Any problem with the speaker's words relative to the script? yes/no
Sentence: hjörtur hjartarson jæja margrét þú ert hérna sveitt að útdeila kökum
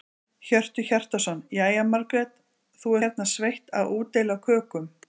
yes